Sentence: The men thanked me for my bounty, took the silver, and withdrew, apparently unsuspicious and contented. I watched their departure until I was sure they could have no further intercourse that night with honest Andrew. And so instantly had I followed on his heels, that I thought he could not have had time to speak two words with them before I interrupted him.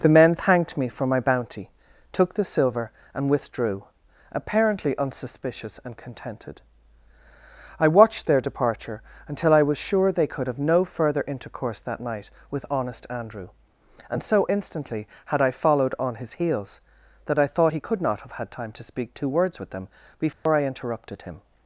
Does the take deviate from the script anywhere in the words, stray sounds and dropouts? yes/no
yes